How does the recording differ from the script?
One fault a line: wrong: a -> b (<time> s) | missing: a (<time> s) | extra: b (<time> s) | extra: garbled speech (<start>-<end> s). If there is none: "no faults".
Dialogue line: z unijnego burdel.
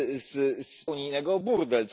no faults